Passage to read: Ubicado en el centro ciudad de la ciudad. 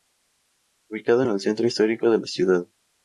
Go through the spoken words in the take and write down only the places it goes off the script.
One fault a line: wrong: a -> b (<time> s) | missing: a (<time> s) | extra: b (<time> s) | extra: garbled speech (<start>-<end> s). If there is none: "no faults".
wrong: ciudad -> histórico (1.7 s)